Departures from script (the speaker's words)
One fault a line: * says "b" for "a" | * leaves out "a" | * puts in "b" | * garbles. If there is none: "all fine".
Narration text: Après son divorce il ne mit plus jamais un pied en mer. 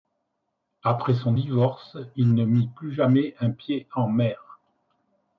all fine